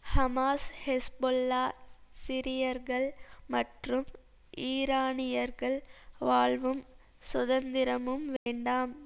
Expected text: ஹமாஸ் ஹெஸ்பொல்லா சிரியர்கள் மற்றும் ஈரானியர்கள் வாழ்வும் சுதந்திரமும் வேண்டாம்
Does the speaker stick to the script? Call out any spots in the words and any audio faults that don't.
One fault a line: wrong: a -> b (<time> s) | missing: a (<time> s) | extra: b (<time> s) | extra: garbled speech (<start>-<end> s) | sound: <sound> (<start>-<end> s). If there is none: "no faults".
sound: dropout (8.4-8.5 s)